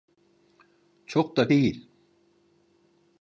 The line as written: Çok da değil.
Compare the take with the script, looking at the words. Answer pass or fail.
pass